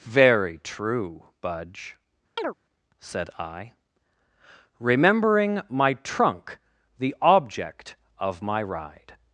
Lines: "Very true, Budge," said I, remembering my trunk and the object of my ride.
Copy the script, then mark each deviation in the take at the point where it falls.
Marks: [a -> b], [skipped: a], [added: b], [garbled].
"Very true, Budge," said I, remembering my trunk [skipped: and] the object of my ride.